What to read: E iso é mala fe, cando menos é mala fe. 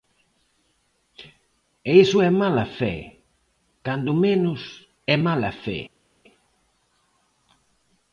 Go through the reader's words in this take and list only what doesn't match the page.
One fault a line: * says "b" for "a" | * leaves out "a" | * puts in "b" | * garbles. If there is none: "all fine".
all fine